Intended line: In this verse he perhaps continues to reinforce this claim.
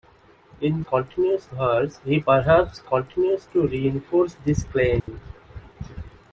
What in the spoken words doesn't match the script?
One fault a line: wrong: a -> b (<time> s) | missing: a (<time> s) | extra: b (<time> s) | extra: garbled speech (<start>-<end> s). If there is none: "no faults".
wrong: this -> continues (0.8 s)